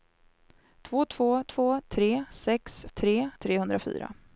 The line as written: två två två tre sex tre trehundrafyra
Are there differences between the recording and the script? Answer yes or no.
no